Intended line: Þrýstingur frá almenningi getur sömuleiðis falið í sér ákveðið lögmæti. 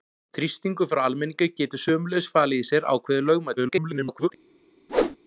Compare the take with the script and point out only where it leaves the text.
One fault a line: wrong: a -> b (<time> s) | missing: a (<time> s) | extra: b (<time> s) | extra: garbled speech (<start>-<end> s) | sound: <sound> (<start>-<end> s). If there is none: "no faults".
extra: garbled speech (3.6-4.3 s)
sound: whoosh (4.9-5.2 s)